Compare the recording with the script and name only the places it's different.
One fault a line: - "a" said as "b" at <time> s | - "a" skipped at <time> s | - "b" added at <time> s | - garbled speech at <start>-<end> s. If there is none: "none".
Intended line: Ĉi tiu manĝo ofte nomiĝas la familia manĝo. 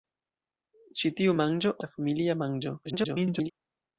- "ofte nomiĝas" skipped at 1.7 s
- garbled speech at 2.8-3.5 s